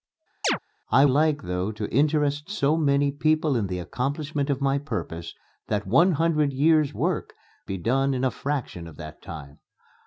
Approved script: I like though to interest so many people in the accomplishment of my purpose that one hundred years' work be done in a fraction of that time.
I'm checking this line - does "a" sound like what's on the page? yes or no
yes